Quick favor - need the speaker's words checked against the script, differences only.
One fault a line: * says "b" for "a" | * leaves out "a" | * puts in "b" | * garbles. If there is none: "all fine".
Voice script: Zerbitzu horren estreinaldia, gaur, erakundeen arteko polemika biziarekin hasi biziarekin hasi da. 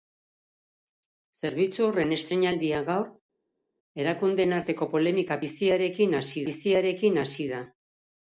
all fine